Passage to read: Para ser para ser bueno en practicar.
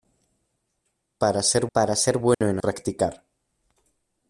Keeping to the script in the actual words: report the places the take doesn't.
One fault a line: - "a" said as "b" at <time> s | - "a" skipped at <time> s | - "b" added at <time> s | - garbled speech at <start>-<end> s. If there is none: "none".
none